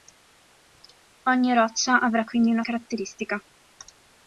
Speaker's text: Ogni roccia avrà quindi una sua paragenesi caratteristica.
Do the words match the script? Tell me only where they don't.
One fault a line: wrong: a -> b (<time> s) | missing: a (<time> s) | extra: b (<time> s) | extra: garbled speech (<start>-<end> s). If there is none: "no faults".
missing: sua paragenesi (2.6 s)